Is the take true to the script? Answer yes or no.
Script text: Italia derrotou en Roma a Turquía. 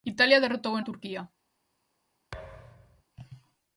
no